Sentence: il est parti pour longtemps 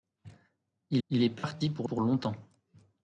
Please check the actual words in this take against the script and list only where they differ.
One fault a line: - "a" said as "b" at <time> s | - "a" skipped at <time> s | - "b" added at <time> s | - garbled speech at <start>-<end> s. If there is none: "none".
- "il" added at 1.1 s
- "pour" added at 1.8 s